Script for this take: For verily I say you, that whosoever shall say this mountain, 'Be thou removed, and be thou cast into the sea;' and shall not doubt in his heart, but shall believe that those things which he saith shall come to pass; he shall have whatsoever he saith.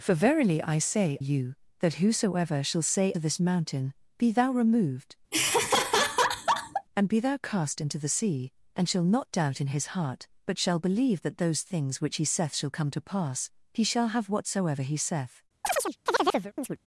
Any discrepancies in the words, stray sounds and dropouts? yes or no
yes